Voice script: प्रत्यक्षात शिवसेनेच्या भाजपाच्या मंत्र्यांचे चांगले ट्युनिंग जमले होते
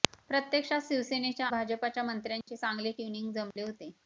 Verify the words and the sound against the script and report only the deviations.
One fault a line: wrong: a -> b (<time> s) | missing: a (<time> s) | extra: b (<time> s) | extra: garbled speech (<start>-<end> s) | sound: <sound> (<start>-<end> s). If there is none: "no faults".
sound: dropout (2.4-2.5 s)
sound: dropout (3.5-3.6 s)